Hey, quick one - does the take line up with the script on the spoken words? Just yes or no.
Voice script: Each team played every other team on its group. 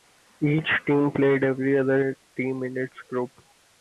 no